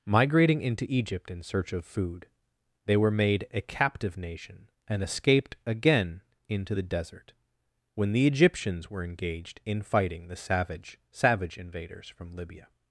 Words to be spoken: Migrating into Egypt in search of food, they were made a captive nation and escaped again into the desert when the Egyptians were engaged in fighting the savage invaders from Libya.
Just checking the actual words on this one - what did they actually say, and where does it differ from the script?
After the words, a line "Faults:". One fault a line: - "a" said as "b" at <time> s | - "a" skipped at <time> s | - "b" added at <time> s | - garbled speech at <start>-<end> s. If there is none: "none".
Migrating into Egypt in search of food, they were made a captive nation and escaped again into the desert when the Egyptians were engaged in fighting the savage savage invaders from Libya.
Faults:
- "savage" added at 11.1 s